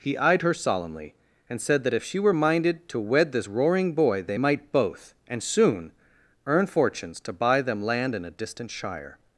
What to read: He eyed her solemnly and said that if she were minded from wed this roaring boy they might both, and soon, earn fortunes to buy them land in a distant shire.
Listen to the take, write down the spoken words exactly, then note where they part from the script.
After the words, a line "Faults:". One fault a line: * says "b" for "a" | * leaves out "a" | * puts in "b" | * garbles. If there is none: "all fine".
He eyed her solemnly and said that if she were minded to wed this roaring boy they might both, and soon, earn fortunes to buy them land in a distant shire.
Faults:
* says "to" for "from"